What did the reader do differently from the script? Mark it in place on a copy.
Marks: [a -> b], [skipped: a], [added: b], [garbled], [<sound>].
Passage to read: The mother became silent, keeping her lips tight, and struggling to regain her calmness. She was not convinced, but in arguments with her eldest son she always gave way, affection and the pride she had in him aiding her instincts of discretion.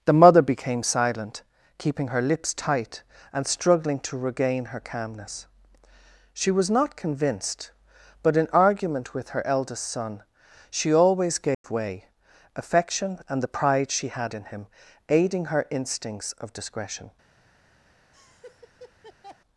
The mother became silent, keeping her lips tight, and struggling to regain her calmness. She was not convinced, but in [arguments -> argument] with her eldest son she always gave [dropout] way, affection and the pride she had in him aiding her instincts of discretion. [laugh]